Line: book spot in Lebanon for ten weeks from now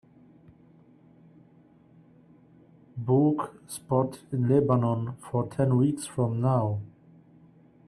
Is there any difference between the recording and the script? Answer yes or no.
no